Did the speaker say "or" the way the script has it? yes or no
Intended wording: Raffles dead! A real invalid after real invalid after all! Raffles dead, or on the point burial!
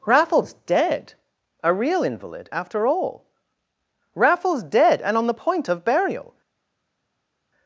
no